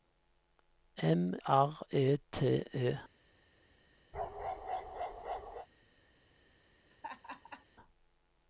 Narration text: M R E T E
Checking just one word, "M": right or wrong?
right